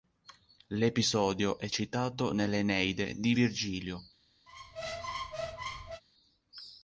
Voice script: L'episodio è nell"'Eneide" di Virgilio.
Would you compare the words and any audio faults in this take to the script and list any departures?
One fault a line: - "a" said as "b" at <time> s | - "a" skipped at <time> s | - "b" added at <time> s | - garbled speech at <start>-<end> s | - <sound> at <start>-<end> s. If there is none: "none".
- "citato" added at 1.7 s
- squeak at 4.5-6.0 s